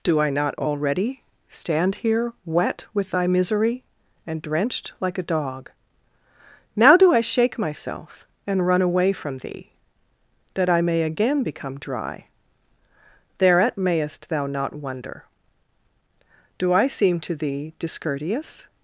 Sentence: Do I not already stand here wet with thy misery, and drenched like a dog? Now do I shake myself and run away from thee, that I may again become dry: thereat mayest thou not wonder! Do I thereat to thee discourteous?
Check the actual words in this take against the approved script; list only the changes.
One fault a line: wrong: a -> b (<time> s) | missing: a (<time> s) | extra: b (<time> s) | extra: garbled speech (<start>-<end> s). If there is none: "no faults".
wrong: thereat -> seem (16.9 s)